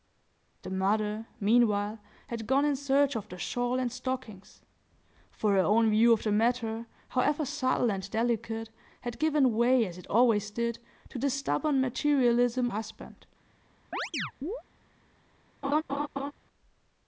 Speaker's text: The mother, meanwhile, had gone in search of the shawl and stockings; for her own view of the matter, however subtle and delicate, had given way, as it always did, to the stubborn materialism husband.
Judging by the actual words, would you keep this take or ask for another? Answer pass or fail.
pass